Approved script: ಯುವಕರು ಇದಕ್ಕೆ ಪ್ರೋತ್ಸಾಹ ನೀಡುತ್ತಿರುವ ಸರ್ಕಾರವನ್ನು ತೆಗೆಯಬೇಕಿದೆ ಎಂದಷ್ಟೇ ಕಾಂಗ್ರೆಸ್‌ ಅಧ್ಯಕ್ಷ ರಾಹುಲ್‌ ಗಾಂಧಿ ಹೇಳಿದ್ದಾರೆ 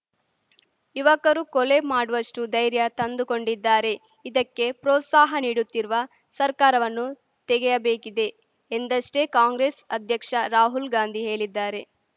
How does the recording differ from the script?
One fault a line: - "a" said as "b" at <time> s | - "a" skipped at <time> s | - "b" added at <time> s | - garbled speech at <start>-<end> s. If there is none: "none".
- "ಕೊಲೆ ಮಾಡುವಷ್ಟುಧೈರ್ಯ ತಂದುಕೊಂಡಿದ್ದಾರೆ" added at 1.5 s